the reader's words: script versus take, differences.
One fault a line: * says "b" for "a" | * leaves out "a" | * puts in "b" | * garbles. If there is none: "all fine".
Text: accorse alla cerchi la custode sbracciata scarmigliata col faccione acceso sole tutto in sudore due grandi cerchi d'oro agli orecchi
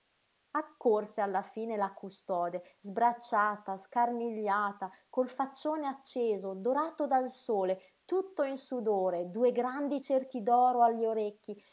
* says "fine" for "cerchi"
* puts in "dorato dal"